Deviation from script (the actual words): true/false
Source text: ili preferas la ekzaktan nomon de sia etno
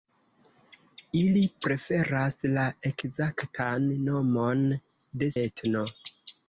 true